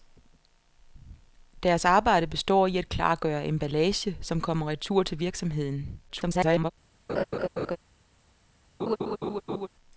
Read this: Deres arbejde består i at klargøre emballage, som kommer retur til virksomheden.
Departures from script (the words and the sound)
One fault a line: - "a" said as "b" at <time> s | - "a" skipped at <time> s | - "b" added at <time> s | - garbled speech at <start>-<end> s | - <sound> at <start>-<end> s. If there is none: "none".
- garbled speech at 6.1-6.7 s
- laugh at 7.1-7.8 s
- laugh at 8.8-9.7 s